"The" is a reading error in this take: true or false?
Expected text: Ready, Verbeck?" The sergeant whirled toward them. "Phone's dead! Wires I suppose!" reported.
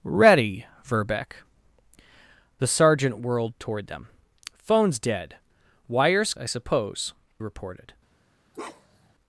false